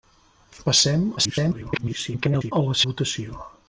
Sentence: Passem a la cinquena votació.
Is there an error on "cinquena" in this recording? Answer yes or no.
yes